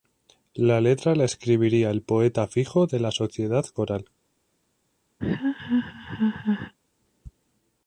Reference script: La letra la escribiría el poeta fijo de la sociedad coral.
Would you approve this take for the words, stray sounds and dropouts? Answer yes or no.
no